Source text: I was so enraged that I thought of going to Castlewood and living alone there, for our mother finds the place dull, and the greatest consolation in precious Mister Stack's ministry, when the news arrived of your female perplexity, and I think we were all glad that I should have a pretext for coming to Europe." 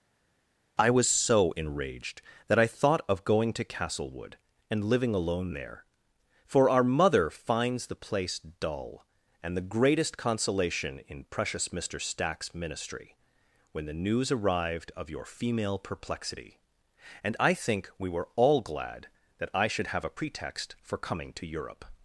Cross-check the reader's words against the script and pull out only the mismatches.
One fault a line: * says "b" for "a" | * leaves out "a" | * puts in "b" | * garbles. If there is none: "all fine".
all fine